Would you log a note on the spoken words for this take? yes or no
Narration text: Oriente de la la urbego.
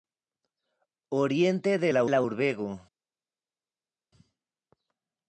no